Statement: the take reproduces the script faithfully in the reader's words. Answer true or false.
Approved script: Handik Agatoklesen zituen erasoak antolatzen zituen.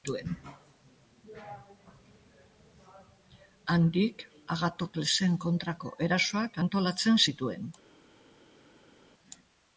false